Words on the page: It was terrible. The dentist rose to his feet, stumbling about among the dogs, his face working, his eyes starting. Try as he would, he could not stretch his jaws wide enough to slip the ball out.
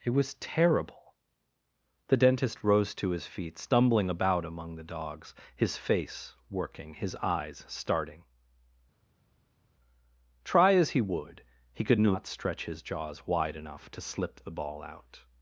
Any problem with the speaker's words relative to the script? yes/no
no